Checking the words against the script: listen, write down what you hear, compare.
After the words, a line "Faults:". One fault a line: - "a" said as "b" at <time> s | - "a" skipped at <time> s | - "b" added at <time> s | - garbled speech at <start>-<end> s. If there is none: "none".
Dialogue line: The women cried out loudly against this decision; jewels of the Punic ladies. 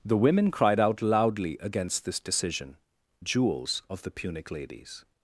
The women cried out loudly against this decision; jewels of the Punic ladies.
Faults:
none